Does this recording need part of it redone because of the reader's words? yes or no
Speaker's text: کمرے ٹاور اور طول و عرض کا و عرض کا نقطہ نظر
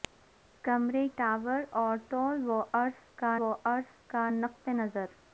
no